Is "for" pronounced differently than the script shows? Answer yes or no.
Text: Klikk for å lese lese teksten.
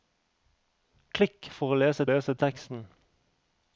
no